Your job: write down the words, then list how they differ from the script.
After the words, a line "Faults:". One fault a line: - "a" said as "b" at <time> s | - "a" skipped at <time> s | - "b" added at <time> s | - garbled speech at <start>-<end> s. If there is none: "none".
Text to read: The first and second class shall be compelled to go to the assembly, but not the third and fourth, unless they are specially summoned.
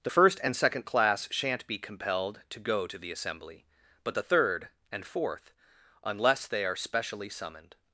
The first and second class shan't be compelled to go to the assembly, but the third and fourth, unless they are specially summoned.
Faults:
- "shall" said as "shan't" at 1.3 s
- "not" skipped at 4.1 s